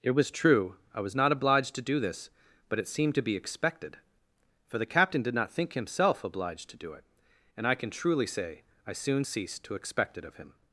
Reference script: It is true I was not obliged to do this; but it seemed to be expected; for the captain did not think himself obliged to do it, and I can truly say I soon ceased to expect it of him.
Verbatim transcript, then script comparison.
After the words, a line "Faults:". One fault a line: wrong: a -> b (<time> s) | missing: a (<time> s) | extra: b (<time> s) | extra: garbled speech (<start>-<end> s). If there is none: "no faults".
It was true I was not obliged to do this; but it seemed to be expected; for the captain did not think himself obliged to do it, and I can truly say I soon ceased to expect it of him.
Faults:
wrong: is -> was (0.1 s)